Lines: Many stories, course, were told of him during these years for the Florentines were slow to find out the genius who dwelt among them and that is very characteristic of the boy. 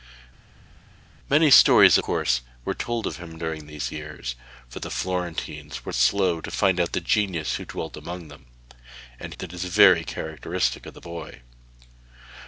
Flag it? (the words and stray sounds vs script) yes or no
no